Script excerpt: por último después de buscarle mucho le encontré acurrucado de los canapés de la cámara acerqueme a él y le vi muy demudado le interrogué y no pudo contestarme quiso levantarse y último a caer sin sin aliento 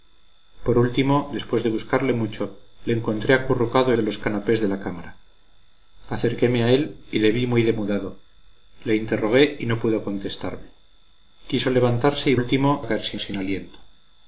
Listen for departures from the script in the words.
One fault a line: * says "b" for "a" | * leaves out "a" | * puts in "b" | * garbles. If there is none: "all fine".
all fine